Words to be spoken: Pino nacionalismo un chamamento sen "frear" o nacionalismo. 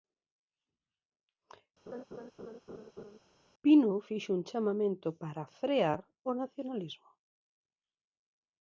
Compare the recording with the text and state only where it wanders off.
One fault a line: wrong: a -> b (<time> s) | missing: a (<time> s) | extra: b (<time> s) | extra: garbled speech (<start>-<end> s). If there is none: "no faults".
wrong: nacionalismo -> fixo (4.1 s)
wrong: sen -> para (5.2 s)